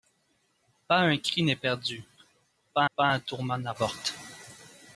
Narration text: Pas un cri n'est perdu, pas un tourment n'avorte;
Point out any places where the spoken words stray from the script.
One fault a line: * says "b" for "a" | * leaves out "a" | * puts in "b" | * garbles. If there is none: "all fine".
* puts in "pas"